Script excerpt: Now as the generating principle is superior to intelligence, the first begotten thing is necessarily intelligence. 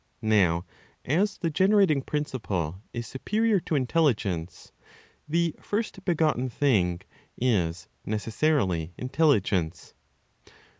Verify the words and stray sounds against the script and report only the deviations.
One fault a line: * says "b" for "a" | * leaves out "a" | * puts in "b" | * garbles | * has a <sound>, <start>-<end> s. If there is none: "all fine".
all fine